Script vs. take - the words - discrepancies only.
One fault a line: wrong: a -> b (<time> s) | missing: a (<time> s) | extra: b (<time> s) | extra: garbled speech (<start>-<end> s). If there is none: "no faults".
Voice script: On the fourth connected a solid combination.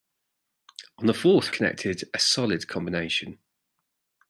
no faults